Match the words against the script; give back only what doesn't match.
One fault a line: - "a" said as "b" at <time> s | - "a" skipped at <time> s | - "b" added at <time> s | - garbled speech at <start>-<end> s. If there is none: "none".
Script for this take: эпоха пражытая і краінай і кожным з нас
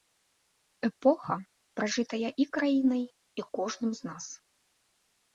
none